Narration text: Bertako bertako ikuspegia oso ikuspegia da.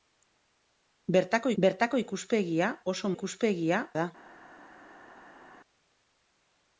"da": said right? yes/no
yes